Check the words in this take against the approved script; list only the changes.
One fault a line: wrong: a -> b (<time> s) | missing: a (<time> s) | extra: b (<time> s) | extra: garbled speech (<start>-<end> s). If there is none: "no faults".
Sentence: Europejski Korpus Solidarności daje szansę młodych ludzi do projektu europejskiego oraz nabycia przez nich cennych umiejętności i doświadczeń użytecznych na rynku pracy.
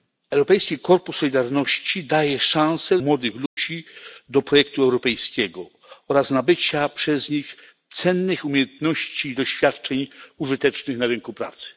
no faults